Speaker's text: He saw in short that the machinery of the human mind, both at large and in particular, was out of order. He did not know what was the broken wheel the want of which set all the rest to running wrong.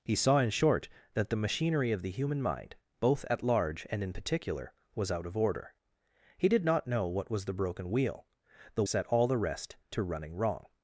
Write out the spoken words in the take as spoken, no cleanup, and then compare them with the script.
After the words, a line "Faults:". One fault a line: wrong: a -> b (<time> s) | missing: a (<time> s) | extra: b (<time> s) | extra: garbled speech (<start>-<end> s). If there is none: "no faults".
He saw in short that the machinery of the human mind, both at large and in particular, was out of order. He did not know what was the broken wheel the set all the rest to running wrong.
Faults:
missing: want of which (8.8 s)